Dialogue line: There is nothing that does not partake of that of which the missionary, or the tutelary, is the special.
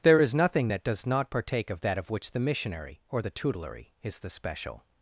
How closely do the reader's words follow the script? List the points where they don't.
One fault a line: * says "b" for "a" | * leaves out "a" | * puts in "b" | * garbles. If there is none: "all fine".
all fine